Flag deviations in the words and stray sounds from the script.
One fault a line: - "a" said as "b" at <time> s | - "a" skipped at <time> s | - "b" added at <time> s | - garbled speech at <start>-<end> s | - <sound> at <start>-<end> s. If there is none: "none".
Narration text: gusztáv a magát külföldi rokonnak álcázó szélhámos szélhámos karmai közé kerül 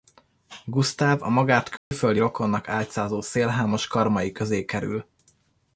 - dropout at 1.8-1.9 s
- "szélhámos" skipped at 3.9 s